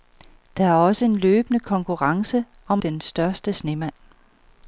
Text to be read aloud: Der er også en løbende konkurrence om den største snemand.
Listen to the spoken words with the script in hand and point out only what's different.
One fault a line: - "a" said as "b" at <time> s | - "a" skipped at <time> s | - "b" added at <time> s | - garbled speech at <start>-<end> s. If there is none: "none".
none